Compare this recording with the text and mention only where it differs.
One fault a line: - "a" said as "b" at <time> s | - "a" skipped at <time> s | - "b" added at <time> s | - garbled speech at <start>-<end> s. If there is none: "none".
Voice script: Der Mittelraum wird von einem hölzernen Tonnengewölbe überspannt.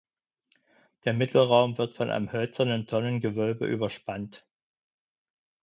none